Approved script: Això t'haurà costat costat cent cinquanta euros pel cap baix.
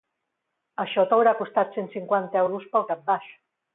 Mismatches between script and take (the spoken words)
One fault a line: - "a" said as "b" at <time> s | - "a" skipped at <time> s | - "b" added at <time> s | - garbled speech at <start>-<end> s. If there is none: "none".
- "costat" skipped at 1.8 s